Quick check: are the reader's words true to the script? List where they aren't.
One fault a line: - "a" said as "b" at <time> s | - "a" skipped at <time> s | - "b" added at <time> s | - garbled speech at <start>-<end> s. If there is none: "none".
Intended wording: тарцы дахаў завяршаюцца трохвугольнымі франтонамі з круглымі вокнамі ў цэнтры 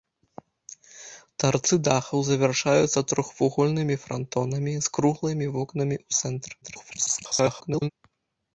- garbled speech at 6.6-7.9 s